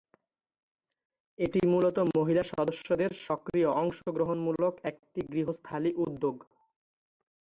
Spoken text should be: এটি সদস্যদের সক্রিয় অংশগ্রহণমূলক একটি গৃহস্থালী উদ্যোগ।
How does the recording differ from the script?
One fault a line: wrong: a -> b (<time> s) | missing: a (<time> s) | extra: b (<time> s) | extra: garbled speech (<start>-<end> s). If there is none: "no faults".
extra: মূলত মহিলা (1.7 s)